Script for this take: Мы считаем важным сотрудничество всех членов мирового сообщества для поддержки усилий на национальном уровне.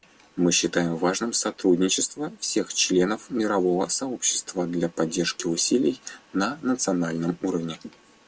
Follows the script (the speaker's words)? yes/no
yes